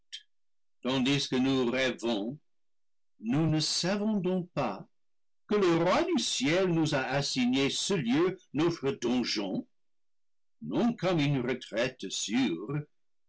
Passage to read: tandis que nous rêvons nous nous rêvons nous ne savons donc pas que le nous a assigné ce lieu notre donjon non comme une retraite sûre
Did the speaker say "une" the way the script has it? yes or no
yes